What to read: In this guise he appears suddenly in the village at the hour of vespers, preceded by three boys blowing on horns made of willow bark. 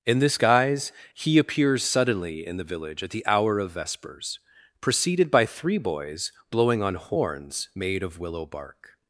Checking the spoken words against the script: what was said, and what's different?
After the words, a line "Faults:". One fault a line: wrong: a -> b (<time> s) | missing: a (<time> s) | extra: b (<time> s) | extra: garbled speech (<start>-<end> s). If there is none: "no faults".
In this guise he appears suddenly in the village at the hour of vespers, preceded by three boys blowing on horns made of willow bark.
Faults:
no faults